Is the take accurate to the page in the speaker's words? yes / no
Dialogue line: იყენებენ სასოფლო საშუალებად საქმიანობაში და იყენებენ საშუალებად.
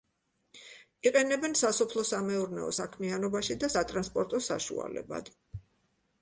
no